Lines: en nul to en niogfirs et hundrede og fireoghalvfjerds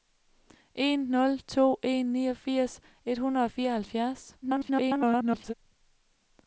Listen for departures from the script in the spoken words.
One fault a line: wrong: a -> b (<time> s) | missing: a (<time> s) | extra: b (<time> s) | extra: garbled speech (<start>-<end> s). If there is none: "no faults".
extra: garbled speech (4.4-5.5 s)